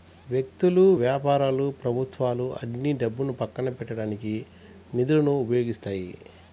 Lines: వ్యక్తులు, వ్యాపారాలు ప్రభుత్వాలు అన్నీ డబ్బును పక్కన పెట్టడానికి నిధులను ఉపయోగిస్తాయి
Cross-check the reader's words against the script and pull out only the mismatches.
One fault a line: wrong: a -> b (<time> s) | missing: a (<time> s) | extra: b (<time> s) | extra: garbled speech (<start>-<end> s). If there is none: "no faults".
no faults